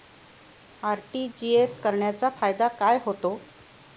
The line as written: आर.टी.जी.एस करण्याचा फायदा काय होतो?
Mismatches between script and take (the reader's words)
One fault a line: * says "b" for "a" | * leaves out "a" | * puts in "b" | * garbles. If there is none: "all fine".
all fine